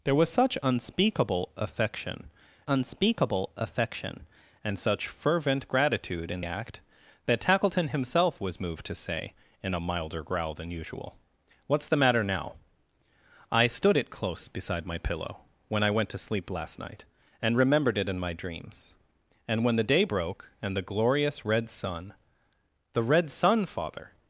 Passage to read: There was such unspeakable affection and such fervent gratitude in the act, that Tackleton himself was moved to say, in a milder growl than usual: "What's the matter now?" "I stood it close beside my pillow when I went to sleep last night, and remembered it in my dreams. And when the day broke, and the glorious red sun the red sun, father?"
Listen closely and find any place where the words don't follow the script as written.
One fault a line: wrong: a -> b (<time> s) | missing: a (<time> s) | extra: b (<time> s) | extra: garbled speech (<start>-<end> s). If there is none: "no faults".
extra: unspeakable affection (2.7 s)
missing: the (6.4 s)